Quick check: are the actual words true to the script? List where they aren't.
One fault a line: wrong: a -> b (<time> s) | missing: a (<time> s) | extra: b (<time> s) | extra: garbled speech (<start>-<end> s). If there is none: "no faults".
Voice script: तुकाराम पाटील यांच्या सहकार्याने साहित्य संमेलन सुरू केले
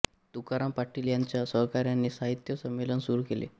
no faults